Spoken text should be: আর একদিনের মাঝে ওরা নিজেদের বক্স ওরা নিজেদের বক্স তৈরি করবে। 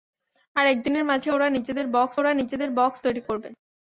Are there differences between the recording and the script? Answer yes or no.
no